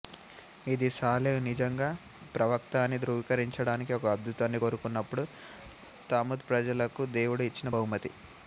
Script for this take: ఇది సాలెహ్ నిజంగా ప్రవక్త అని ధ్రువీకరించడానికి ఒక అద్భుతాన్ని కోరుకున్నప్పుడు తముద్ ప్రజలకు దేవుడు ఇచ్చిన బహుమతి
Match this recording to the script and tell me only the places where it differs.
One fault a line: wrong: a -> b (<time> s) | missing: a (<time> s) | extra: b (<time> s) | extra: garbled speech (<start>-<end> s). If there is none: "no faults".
no faults